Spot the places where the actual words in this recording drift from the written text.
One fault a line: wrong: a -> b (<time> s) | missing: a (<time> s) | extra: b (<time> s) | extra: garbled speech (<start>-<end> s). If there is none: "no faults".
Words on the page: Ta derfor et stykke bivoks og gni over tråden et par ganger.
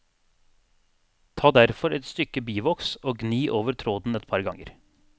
no faults